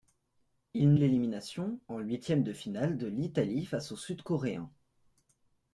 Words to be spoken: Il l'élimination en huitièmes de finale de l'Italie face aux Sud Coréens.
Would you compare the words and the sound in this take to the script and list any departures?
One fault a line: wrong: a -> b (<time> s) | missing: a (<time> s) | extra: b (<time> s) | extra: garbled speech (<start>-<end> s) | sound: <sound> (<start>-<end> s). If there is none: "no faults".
no faults